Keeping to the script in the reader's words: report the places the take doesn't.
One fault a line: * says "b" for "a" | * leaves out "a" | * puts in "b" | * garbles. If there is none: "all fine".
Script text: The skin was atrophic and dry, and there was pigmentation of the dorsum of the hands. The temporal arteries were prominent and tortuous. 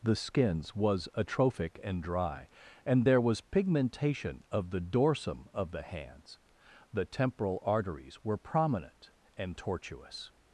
* says "skins" for "skin"